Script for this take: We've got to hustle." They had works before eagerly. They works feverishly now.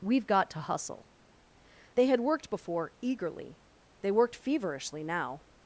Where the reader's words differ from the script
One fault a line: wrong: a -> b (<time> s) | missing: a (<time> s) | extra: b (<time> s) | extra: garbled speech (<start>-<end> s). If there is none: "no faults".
wrong: works -> worked (2.2 s)
wrong: works -> worked (4.1 s)